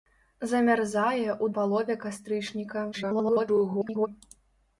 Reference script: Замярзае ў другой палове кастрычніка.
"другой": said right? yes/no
no